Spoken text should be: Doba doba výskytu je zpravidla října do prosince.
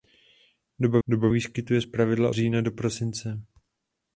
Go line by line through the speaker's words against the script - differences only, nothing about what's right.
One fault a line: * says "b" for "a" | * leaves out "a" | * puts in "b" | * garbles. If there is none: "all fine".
all fine